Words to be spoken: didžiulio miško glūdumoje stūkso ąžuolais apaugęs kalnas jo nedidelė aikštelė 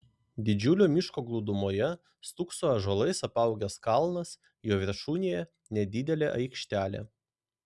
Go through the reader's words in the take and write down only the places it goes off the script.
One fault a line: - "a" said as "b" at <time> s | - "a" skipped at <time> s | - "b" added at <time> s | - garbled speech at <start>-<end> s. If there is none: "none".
- "viršūnėje" added at 4.8 s